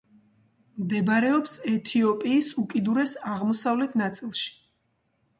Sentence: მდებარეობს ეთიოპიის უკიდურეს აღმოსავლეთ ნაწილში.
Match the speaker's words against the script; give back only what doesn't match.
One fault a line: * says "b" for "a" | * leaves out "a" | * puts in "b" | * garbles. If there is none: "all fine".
all fine